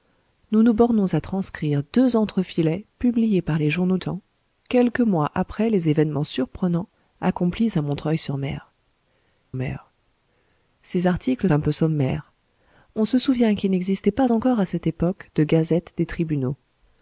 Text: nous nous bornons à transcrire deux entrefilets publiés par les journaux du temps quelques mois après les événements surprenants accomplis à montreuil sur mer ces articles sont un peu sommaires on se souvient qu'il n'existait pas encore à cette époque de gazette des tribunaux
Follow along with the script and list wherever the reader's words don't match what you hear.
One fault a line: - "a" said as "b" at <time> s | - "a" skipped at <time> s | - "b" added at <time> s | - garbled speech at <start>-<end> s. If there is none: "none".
- "du" skipped at 4.0 s
- "mer" added at 9.5 s
- "sont" skipped at 11.5 s